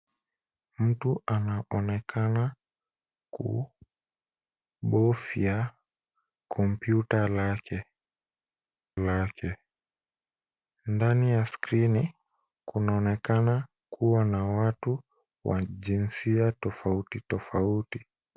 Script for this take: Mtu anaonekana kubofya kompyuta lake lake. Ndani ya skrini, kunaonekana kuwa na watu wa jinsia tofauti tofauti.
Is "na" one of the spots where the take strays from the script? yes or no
no